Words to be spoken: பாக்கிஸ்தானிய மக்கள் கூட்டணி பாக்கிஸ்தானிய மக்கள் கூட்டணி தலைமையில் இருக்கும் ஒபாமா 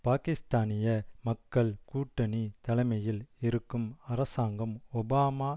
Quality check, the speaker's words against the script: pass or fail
fail